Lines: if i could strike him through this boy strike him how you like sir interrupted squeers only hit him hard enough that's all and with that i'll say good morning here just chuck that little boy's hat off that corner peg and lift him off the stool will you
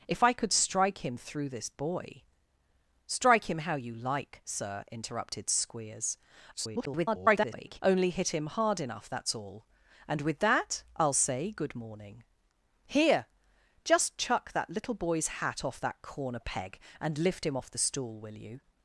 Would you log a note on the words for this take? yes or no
yes